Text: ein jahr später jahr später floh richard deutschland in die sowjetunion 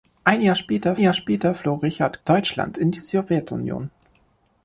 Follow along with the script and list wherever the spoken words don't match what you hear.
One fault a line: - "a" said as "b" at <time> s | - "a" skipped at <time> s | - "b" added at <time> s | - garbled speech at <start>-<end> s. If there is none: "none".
none